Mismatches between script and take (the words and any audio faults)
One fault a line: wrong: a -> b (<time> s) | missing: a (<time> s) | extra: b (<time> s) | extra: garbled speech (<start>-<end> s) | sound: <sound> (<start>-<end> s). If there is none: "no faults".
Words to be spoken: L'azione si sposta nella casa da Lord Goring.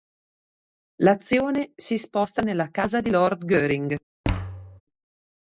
wrong: da -> di (3.0 s)
sound: thud (4.2-4.8 s)